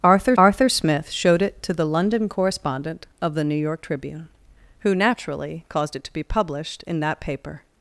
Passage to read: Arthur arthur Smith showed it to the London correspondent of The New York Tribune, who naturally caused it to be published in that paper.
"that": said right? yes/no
yes